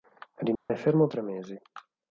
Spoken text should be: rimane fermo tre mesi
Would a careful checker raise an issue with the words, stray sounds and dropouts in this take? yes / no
yes